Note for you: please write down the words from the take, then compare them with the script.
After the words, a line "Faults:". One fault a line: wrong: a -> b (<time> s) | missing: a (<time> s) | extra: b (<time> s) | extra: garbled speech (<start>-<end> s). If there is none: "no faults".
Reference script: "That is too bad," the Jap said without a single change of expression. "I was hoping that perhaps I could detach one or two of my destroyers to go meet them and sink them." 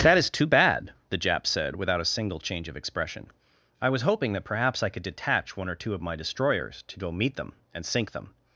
"That is too bad," the Jap said without a single change of expression. "I was hoping that perhaps I could detach one or two of my destroyers to go meet them and sink them."
Faults:
no faults